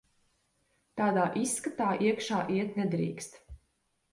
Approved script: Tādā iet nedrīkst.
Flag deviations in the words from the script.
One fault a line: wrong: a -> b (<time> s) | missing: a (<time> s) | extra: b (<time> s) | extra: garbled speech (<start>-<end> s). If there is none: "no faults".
extra: izskatā iekšā (1.4 s)